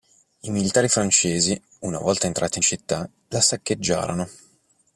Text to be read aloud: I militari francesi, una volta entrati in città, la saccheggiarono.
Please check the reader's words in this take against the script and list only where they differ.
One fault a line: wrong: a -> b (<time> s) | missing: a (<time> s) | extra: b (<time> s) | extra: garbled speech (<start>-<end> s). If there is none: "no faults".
no faults